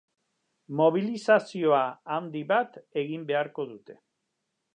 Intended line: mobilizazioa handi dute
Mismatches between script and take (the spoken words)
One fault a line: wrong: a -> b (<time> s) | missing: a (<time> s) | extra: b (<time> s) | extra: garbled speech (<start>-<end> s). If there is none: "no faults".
extra: bat egin beharko (2.5 s)